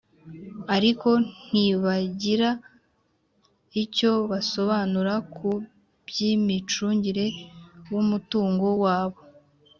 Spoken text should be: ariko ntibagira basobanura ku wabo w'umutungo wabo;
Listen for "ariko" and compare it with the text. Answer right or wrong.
right